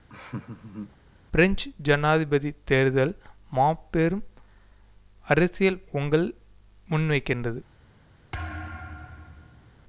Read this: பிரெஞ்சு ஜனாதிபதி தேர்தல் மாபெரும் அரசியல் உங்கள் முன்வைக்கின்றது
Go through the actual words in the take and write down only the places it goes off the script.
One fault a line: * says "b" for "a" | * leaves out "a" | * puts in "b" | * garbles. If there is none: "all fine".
all fine